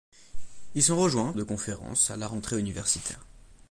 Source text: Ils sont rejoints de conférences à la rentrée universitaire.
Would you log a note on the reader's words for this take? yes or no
no